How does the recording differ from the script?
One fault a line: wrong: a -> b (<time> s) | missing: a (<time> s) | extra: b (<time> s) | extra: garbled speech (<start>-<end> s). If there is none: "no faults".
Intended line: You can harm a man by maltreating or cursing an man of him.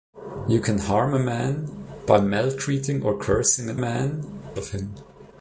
no faults